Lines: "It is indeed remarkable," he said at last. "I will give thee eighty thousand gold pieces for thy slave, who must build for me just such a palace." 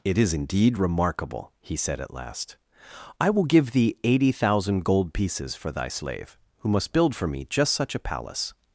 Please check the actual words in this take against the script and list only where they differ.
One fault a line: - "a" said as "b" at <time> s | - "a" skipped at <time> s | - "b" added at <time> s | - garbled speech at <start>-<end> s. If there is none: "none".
none